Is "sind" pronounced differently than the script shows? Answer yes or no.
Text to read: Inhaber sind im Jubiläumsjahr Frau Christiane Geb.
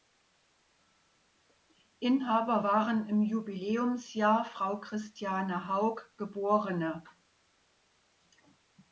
yes